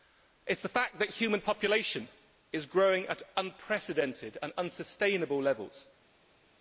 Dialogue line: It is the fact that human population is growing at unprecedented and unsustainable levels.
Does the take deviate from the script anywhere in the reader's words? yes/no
no